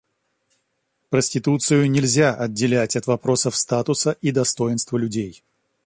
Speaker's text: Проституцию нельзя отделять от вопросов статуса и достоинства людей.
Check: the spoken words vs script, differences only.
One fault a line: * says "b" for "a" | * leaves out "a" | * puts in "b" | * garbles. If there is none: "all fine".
all fine